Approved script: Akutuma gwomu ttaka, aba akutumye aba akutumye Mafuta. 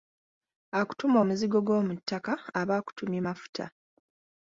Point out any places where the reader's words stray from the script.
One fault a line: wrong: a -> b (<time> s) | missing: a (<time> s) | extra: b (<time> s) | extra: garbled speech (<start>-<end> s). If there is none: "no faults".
extra: omuzigo (1.2 s)
missing: aba akutumye (3.2 s)